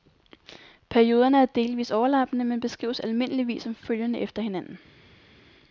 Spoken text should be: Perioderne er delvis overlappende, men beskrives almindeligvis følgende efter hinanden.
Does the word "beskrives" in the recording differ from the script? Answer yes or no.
no